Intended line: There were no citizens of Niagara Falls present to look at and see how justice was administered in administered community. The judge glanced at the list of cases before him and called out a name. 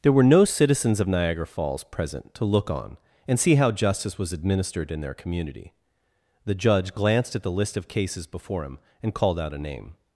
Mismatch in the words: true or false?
true